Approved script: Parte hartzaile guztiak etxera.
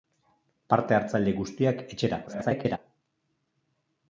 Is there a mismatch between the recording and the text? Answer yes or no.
yes